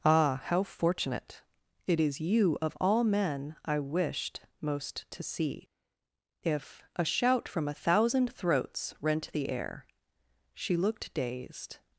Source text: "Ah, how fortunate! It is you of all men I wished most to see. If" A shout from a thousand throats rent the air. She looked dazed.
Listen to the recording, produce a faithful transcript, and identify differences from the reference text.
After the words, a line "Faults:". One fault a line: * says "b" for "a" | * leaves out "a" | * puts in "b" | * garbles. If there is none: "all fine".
"Ah, how fortunate! It is you of all men I wished most to see. If" A shout from a thousand throats rent the air. She looked dazed.
Faults:
all fine